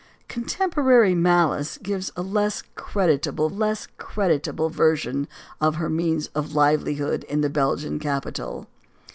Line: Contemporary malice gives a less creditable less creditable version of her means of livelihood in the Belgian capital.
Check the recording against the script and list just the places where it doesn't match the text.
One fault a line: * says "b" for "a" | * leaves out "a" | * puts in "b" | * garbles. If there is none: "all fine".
all fine